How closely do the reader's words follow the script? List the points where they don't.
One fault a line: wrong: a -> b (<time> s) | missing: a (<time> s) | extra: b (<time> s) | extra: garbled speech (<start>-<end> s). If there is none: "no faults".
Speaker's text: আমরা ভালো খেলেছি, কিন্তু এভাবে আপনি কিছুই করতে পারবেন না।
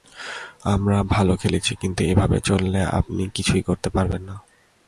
extra: চললে (2.4 s)